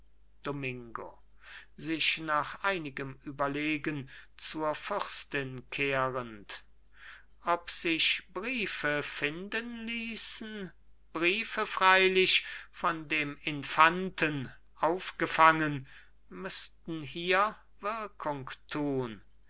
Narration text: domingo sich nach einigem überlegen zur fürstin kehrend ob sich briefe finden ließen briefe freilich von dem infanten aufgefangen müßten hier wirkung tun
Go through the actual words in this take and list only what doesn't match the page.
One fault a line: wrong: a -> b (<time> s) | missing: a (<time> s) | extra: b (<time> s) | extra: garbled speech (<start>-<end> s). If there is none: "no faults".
no faults